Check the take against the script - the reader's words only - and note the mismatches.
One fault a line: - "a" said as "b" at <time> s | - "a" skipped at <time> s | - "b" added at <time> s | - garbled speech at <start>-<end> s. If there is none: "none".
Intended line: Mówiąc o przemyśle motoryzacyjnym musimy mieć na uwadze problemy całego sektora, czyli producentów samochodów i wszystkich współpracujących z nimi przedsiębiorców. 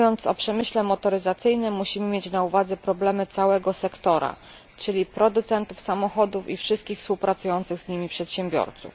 none